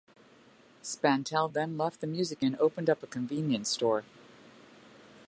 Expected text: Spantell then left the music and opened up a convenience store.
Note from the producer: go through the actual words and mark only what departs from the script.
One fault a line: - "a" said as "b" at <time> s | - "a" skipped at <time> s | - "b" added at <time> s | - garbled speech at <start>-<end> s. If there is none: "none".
none